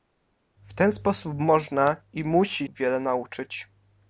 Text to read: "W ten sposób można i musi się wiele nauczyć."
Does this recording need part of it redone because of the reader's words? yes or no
yes